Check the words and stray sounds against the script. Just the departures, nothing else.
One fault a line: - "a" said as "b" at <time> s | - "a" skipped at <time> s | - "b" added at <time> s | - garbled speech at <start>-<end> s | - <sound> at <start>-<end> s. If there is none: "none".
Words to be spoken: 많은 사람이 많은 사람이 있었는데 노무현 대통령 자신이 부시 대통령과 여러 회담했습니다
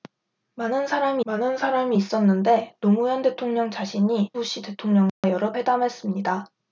- dropout at 5.1-5.2 s